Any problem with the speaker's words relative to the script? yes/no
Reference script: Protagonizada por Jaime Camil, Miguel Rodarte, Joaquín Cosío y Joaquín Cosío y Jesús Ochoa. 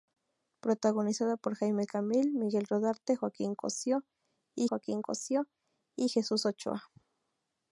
no